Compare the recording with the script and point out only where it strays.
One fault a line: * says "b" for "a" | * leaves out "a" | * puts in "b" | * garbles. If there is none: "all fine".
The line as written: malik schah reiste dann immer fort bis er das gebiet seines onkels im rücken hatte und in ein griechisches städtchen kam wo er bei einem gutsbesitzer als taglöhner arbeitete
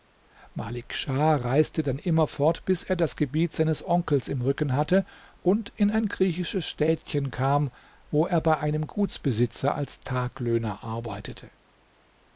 all fine